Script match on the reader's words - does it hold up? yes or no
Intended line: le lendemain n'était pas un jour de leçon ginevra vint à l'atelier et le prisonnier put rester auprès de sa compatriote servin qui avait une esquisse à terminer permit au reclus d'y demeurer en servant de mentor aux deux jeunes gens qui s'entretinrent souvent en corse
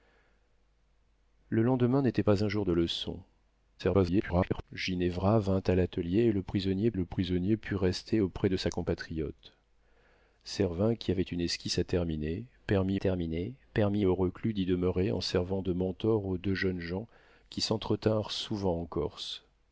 no